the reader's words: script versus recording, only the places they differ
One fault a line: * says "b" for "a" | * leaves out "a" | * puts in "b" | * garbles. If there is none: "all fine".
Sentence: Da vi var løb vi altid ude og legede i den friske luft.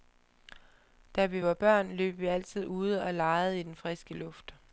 * puts in "børn"